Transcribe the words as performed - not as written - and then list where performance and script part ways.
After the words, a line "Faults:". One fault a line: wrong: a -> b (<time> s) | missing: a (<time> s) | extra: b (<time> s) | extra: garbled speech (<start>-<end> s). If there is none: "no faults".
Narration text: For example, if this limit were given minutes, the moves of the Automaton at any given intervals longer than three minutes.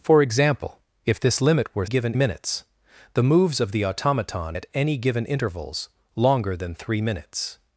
For example, if this limit were given minutes, the moves of the Automaton at any given intervals longer than three minutes.
Faults:
no faults